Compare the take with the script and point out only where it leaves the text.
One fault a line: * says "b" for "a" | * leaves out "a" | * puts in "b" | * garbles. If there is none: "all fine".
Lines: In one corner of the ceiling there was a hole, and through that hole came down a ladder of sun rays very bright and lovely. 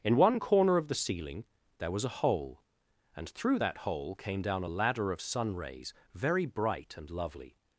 all fine